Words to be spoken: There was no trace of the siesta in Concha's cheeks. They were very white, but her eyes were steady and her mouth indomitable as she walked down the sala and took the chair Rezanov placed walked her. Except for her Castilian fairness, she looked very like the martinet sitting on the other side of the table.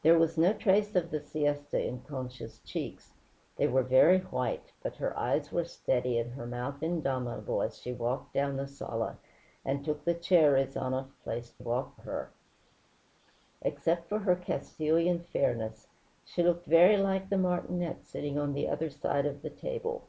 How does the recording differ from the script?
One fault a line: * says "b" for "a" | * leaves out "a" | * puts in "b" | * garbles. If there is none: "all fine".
all fine